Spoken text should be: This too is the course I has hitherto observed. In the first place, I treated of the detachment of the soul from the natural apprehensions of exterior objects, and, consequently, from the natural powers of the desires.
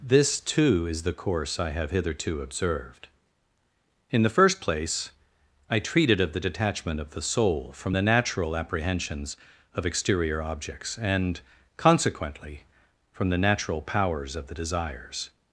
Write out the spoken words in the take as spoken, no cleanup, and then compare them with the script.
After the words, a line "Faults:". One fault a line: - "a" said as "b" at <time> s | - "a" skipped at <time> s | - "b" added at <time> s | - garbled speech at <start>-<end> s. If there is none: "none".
This too is the course I have hitherto observed. In the first place, I treated of the detachment of the soul from the natural apprehensions of exterior objects, and, consequently, from the natural powers of the desires.
Faults:
- "has" said as "have" at 1.7 s